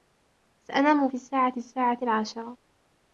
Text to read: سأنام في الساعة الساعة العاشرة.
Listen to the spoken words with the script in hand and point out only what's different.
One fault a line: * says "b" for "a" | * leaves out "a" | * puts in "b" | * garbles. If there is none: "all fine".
all fine